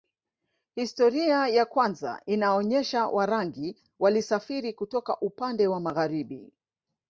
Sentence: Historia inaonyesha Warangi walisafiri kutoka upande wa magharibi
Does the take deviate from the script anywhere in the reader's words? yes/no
yes